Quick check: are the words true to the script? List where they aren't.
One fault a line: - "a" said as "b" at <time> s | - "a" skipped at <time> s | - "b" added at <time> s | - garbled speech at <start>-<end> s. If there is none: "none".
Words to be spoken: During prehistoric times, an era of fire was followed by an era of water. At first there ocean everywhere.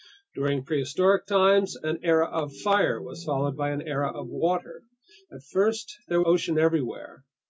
none